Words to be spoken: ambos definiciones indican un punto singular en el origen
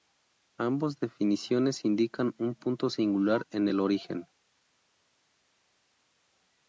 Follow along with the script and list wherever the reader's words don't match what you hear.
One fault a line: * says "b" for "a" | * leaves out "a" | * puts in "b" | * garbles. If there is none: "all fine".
all fine